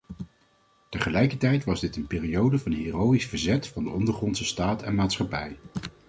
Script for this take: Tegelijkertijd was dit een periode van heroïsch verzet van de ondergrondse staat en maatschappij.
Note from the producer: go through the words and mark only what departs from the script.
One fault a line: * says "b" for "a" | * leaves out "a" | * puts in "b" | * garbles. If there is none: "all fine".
all fine